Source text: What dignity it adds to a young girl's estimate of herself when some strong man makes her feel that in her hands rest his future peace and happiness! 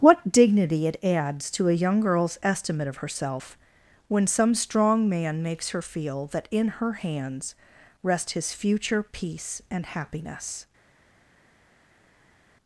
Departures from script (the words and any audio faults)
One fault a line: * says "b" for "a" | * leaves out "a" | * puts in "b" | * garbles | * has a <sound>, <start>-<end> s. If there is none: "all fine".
all fine